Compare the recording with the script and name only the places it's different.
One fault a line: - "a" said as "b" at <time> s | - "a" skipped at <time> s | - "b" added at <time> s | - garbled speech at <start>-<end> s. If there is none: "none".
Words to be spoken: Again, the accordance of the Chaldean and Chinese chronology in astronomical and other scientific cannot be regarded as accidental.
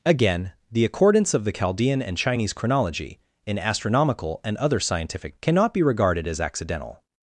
none